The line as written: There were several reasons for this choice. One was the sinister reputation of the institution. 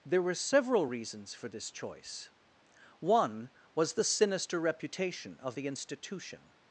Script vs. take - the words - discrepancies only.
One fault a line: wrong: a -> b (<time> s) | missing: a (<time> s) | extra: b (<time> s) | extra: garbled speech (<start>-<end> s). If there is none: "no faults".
no faults